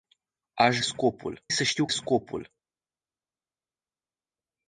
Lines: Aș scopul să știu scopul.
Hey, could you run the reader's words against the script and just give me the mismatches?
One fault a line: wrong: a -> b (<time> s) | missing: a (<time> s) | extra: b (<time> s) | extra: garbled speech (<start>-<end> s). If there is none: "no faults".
no faults